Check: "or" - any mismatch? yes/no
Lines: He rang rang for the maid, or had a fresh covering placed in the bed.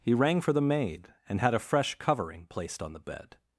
yes